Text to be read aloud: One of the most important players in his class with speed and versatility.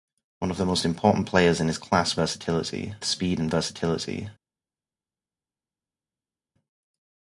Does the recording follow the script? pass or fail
fail